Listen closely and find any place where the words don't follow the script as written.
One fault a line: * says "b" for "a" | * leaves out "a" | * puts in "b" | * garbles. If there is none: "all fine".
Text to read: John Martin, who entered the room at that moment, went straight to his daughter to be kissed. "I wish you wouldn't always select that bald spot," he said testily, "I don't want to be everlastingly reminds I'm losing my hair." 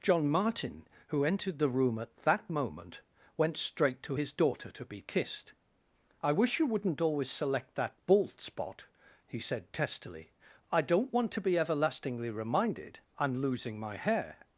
* says "reminded" for "reminds"